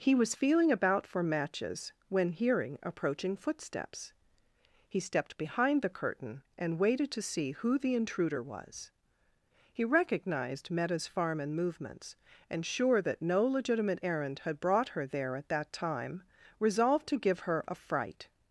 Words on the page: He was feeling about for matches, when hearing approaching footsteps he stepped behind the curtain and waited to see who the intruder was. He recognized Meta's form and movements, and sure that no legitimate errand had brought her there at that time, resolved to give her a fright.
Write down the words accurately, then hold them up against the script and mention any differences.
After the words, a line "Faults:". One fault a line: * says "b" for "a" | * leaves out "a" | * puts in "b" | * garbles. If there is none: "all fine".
He was feeling about for matches, when hearing approaching footsteps he stepped behind the curtain and waited to see who the intruder was. He recognized Meta's farm and movements, and sure that no legitimate errand had brought her there at that time, resolved to give her a fright.
Faults:
* says "farm" for "form"